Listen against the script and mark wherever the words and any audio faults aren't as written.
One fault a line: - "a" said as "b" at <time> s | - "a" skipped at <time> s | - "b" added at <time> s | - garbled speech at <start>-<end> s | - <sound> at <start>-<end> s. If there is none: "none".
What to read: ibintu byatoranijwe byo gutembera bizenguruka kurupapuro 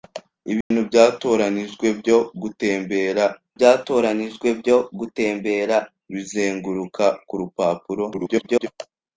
- dropout at 0.6-0.7 s
- "byatoranijwe byo gutembera" added at 3.6 s
- garbled speech at 8.1-8.7 s